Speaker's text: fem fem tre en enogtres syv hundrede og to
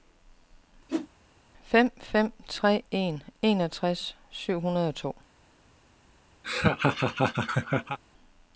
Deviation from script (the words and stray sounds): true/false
true